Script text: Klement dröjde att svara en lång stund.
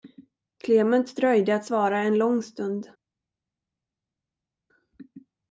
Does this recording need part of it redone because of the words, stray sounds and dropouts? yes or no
no